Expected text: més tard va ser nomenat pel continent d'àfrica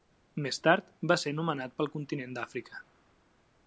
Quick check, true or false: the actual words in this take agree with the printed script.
true